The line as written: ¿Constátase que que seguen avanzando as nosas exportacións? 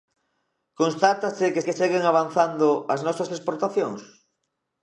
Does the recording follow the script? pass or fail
pass